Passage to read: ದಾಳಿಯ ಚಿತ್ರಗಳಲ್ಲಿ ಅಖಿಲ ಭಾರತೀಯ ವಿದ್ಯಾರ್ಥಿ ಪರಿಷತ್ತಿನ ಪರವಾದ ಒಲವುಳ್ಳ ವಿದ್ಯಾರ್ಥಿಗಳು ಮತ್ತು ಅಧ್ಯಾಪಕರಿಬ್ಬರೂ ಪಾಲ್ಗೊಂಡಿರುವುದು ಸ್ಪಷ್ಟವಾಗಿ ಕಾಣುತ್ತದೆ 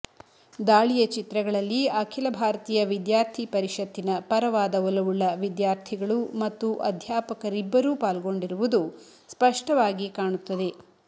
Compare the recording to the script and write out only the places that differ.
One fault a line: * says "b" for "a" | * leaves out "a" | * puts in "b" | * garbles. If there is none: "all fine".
all fine